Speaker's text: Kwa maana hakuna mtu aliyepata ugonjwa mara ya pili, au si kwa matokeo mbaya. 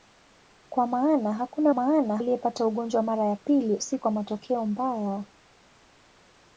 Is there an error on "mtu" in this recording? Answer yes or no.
yes